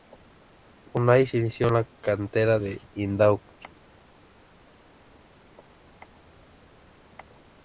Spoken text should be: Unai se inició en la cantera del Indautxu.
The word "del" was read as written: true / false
true